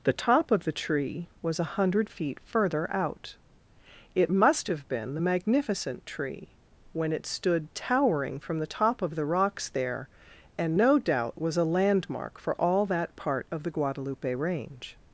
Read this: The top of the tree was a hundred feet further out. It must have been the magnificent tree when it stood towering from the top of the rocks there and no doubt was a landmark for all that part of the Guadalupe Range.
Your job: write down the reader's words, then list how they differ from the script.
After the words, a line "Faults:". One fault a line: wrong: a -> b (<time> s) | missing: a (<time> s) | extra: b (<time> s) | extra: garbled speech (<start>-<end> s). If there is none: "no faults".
The top of the tree was a hundred feet further out. It must have been the magnificent tree when it stood towering from the top of the rocks there and no doubt was a landmark for all that part of the Guadalupe Range.
Faults:
no faults